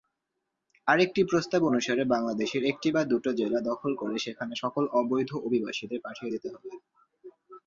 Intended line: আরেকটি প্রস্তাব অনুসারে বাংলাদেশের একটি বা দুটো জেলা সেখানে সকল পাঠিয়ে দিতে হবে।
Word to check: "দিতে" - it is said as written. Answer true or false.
true